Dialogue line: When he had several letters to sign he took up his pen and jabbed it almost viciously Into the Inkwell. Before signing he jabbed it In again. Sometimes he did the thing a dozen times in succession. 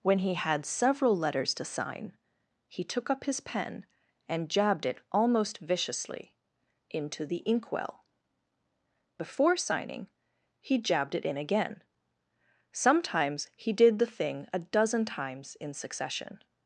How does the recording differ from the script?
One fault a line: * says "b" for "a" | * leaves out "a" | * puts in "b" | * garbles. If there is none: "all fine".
all fine